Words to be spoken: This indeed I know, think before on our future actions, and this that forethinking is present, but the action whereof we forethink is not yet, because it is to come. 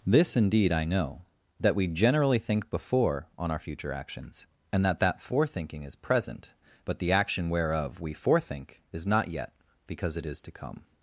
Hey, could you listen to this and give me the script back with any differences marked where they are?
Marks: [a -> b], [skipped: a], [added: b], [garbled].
This indeed I know, [added: that we generally] think before on our future actions, and [this -> that] that forethinking is present, but the action whereof we forethink is not yet, because it is to come.